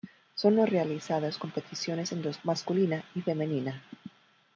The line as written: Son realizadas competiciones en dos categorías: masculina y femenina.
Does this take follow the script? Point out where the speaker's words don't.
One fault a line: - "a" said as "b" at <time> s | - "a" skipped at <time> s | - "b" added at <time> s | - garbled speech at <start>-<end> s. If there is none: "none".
- "categorías" skipped at 2.4 s